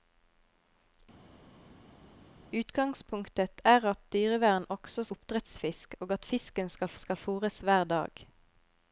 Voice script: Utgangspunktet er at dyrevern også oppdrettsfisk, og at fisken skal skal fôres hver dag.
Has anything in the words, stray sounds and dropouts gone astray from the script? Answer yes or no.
no